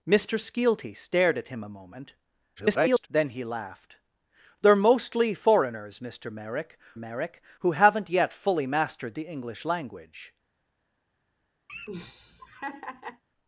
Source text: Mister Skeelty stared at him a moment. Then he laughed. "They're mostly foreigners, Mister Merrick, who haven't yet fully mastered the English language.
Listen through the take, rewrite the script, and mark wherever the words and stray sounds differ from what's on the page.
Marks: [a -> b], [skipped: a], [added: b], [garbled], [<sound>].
Mister Skeelty stared at him a moment. [garbled] Then he laughed. "They're mostly foreigners, Mister Merrick, [added: Merrick] who haven't yet fully mastered the English language. [laugh]